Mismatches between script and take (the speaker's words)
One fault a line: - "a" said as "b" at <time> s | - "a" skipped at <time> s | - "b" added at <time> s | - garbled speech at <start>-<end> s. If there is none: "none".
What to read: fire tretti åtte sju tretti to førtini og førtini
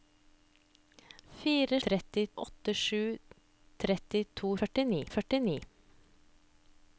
none